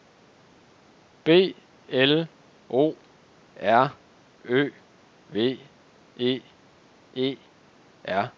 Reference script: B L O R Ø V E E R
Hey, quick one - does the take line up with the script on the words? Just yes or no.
yes